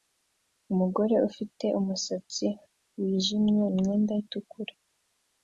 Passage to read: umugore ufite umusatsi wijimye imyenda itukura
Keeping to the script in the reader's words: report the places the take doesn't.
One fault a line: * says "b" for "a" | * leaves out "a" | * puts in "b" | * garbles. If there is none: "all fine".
all fine